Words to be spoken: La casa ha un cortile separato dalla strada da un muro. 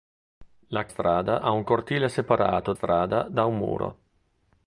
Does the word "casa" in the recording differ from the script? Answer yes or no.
yes